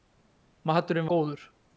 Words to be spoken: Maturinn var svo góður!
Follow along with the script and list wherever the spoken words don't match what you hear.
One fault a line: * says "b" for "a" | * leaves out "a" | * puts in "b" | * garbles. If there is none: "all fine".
* leaves out "var svo"